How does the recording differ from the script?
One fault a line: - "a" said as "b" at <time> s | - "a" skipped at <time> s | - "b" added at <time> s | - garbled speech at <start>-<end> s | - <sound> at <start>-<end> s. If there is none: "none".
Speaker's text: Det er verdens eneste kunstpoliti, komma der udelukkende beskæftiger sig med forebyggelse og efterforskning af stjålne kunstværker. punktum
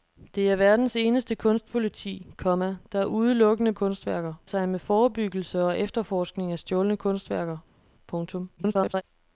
- "beskæftiger" said as "kunstværker" at 3.7 s
- garbled speech at 8.6-9.0 s